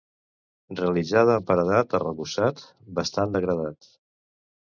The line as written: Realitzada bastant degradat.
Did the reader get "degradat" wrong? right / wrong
right